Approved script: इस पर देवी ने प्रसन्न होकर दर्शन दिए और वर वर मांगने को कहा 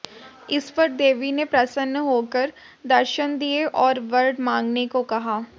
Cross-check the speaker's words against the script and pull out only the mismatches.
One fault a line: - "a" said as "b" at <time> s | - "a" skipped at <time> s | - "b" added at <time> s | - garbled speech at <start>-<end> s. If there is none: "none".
- "वर" skipped at 4.3 s